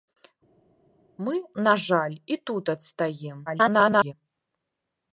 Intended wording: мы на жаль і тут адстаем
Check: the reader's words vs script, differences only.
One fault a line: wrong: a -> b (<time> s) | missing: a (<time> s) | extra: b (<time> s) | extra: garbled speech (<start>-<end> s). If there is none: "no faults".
extra: garbled speech (3.5-4.1 s)